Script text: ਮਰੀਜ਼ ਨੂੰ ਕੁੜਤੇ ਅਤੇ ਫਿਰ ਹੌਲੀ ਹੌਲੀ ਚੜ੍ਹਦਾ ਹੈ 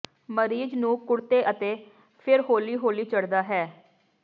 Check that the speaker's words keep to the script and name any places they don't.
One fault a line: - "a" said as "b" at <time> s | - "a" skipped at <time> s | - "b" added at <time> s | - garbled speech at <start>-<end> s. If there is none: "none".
none